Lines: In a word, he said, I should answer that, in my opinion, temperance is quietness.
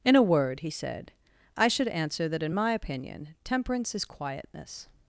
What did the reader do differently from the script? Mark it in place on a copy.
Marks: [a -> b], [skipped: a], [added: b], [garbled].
In a word, he said, I should answer that, in my opinion, temperance is quietness.